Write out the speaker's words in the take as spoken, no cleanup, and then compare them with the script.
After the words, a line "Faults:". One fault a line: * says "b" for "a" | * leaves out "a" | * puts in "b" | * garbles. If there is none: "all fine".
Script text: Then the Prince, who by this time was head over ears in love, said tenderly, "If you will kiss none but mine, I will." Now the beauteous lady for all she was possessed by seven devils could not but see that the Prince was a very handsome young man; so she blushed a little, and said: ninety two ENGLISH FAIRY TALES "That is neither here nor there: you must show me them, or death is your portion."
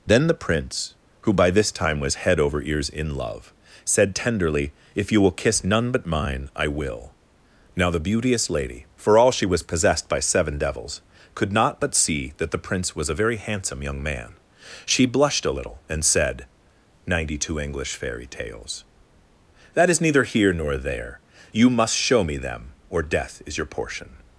Then the Prince, who by this time was head over ears in love, said tenderly, "If you will kiss none but mine, I will." Now the beauteous lady for all she was possessed by seven devils could not but see that the Prince was a very handsome young man; she blushed a little, and said: ninety two ENGLISH FAIRY TALES "That is neither here nor there: you must show me them, or death is your portion."
Faults:
* leaves out "so"